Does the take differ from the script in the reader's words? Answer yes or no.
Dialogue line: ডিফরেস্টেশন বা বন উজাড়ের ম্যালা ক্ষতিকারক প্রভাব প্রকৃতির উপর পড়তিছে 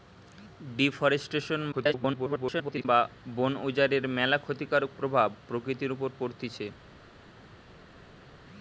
yes